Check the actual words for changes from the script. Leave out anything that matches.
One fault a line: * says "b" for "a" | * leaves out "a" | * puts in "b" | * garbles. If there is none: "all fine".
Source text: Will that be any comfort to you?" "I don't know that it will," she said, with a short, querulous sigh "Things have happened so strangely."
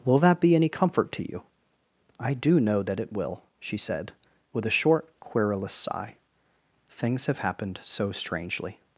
* says "do" for "don't"